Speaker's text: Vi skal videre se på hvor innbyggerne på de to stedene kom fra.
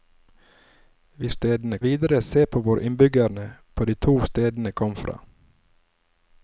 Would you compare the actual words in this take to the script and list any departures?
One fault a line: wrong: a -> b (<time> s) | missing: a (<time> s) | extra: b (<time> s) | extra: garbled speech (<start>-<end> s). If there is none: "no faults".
wrong: skal -> stedene (1.3 s)